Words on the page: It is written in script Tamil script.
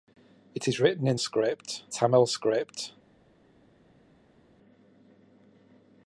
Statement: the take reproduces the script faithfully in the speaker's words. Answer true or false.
true